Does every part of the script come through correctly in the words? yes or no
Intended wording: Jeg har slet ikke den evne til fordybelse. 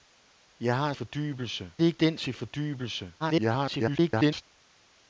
no